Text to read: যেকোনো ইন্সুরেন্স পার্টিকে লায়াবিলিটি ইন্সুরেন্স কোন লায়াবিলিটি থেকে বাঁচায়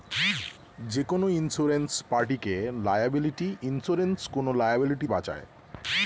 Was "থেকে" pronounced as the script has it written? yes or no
no